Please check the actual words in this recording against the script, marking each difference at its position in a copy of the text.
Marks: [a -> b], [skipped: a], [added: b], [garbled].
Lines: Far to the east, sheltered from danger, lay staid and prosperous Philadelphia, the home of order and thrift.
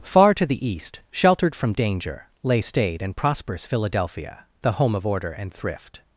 Far to the east, sheltered from danger, lay staid and prosperous Philadelphia, the home of order and thrift.